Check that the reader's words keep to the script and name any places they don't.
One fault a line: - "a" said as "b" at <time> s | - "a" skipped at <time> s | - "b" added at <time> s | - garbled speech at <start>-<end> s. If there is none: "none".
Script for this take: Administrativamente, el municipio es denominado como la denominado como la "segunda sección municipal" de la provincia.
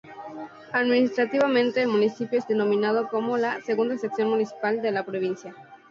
- "denominado como la" skipped at 3.6 s